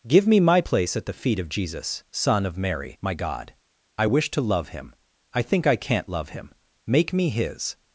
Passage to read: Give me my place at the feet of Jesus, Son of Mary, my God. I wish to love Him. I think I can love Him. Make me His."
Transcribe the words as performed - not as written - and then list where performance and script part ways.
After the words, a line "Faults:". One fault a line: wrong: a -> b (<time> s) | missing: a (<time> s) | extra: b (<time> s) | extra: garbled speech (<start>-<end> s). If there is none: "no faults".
Give me my place at the feet of Jesus, Son of Mary, my God. I wish to love Him. I think I can't love Him. Make me His."
Faults:
wrong: can -> can't (5.8 s)